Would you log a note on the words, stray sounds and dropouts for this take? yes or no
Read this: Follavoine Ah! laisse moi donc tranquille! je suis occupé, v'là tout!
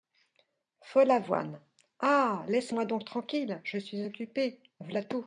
no